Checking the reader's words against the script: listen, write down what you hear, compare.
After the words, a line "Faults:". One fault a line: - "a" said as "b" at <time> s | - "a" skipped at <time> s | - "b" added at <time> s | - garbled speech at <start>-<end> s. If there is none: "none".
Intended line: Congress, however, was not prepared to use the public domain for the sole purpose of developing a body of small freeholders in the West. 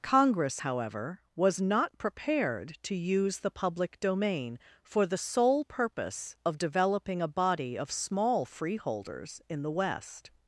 Congress, however, was not prepared to use the public domain for the sole purpose of developing a body of small freeholders in the West.
Faults:
none